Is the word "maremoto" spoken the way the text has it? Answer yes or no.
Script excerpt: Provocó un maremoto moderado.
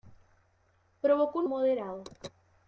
no